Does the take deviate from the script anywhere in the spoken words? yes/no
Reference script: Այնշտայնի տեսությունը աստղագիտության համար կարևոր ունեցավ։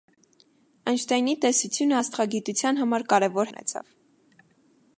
no